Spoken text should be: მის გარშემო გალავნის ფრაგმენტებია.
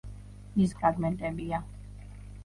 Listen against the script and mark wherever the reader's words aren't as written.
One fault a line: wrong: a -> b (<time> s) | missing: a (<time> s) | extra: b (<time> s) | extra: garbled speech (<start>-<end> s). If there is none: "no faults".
missing: გარშემო გალავნის (0.7 s)